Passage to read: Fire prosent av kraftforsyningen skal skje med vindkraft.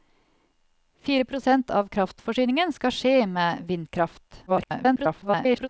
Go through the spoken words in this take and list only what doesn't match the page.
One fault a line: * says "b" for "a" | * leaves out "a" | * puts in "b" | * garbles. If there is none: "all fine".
* garbles